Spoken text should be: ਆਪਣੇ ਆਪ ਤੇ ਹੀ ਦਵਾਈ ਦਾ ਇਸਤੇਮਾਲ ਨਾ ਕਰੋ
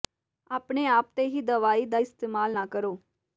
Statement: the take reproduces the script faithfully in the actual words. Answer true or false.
true